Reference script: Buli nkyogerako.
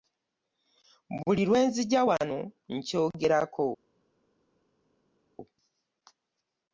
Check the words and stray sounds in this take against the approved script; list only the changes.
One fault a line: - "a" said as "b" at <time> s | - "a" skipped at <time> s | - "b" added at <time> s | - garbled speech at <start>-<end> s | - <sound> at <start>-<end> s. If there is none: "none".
- "lwe nzija wano" added at 1.5 s